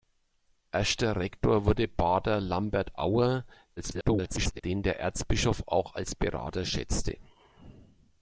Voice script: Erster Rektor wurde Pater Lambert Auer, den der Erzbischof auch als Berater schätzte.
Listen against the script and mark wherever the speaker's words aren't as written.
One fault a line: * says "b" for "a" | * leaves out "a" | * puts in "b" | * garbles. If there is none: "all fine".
* garbles